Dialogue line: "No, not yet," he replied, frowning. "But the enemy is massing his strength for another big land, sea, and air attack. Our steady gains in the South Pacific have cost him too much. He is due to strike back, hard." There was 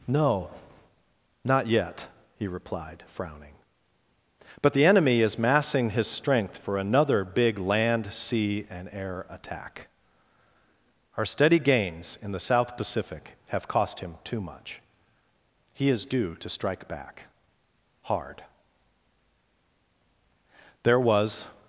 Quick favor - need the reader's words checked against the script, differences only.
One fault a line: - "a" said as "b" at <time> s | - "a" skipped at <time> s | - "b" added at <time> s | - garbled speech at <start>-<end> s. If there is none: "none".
none